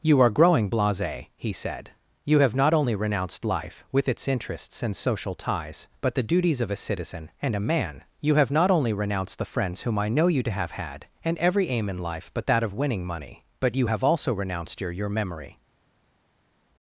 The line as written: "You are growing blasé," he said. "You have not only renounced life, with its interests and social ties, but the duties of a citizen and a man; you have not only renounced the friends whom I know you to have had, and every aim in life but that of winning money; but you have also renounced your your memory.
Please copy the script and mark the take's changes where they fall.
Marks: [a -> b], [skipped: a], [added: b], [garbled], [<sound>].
"You are growing blasé," he said. "You have not only renounced life, with its interests and social ties, but the duties of a citizen and a man; you have not only renounced the friends whom I know you to have had, and every aim in life but that of winning money; but you have also renounced your your memory.